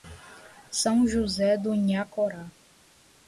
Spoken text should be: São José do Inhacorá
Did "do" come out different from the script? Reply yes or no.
no